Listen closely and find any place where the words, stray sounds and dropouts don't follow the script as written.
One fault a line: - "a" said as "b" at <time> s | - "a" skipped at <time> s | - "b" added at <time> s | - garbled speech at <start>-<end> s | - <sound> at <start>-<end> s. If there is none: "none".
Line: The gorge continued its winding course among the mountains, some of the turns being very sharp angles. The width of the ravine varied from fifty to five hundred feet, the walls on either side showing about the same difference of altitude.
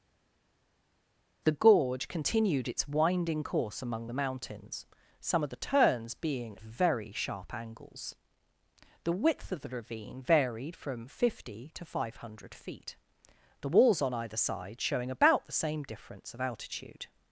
none